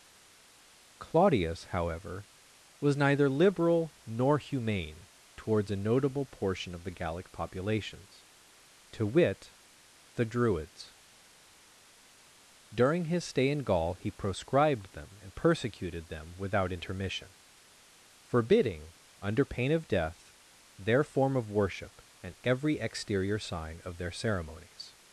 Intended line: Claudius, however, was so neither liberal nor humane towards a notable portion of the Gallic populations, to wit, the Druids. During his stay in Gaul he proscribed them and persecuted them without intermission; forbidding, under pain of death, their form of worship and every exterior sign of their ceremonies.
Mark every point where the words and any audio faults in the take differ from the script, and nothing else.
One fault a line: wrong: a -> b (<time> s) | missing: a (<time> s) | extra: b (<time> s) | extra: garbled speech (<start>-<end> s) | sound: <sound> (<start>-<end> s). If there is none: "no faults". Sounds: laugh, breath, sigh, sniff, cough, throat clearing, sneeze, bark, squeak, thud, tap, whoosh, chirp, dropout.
missing: so (3.0 s)